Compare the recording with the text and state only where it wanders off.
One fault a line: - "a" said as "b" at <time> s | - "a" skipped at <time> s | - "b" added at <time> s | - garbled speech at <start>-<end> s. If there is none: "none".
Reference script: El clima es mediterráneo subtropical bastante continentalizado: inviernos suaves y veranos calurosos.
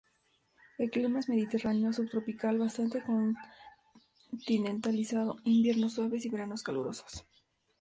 none